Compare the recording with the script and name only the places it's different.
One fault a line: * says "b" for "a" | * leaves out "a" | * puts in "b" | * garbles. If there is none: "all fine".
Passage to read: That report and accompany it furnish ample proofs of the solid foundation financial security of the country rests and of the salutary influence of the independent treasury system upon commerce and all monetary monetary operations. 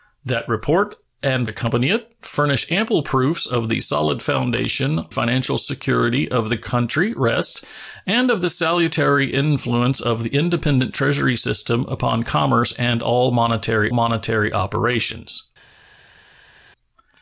all fine